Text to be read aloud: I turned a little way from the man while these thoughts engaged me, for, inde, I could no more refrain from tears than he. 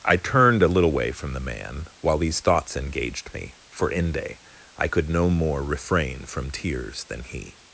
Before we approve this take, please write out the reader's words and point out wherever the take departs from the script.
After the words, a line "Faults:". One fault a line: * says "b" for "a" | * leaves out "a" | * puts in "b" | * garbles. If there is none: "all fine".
I turned a little way from the man while these thoughts engaged me, for, inde, I could no more refrain from tears than he.
Faults:
all fine